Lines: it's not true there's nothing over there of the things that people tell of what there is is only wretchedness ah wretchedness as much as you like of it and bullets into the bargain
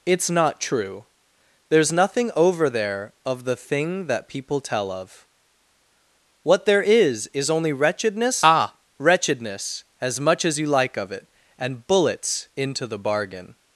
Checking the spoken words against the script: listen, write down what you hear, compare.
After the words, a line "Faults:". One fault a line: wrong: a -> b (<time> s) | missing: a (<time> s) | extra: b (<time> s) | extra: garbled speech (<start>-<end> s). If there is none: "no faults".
it's not true there's nothing over there of the thing that people tell of what there is is only wretchedness ah wretchedness as much as you like of it and bullets into the bargain
Faults:
wrong: things -> thing (3.5 s)